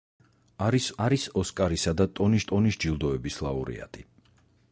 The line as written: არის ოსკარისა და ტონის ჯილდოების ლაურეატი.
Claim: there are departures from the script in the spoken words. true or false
true